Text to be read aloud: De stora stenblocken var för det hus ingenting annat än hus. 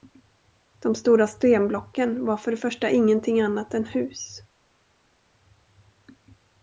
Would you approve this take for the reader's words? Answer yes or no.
no